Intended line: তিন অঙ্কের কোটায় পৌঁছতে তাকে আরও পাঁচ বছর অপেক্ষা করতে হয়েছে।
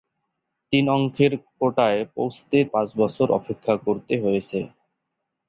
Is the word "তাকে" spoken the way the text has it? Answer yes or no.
no